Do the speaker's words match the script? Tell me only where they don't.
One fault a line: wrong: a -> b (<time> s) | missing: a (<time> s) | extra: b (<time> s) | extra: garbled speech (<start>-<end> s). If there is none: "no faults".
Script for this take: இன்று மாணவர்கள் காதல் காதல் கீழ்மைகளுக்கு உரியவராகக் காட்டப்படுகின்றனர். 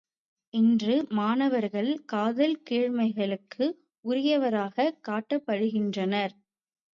missing: காதல் (2.5 s)